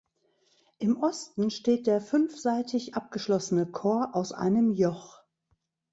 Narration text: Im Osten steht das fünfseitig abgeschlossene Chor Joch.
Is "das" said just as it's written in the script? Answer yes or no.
no